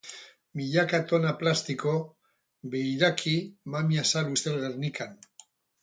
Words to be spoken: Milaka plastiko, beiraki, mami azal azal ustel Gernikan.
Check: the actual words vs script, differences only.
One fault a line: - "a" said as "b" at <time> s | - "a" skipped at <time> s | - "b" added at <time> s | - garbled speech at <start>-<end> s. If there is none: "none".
- "tona" added at 1.1 s
- "azal" skipped at 4.3 s